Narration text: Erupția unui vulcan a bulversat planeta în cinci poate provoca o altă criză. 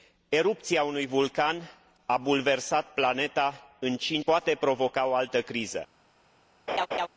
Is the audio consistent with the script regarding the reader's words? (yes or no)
yes